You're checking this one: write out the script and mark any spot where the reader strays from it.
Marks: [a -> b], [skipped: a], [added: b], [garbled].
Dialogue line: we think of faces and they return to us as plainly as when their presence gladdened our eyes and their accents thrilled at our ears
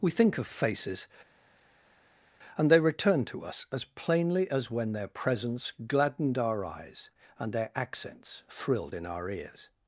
we think of faces and they return to us as plainly as when their presence gladdened our eyes and their accents thrilled [at -> in] our ears